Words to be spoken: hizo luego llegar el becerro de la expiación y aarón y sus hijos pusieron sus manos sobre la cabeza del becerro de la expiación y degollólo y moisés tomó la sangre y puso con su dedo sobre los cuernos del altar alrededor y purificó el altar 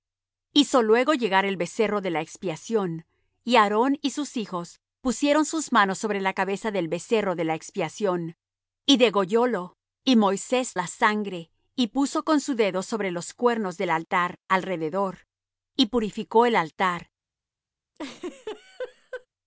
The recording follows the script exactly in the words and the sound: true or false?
false